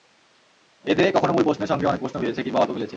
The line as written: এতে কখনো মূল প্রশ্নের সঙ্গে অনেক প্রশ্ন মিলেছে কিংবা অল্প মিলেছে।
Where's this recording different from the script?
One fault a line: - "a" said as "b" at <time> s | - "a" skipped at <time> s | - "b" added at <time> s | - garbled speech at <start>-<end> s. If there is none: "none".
none